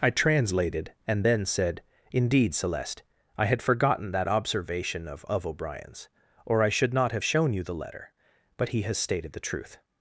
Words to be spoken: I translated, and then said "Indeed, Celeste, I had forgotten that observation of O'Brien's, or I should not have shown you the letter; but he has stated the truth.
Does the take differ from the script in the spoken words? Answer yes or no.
yes